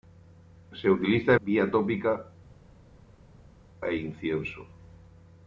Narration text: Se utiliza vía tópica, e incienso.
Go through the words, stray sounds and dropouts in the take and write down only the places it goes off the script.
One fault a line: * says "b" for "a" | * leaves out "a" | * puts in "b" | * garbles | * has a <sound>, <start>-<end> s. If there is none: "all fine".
all fine